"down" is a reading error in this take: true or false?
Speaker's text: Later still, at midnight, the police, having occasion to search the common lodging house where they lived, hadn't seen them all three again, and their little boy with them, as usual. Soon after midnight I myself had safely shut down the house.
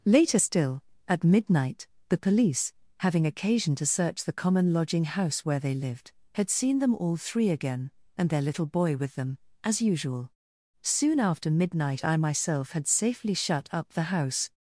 true